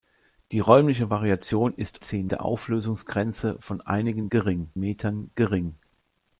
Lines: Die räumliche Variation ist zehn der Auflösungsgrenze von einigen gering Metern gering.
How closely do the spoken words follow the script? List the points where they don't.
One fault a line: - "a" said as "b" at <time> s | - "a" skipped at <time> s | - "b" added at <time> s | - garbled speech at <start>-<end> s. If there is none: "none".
none